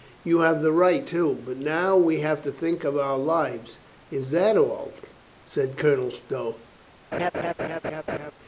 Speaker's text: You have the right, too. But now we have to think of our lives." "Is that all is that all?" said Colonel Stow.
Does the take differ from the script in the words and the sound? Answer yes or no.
yes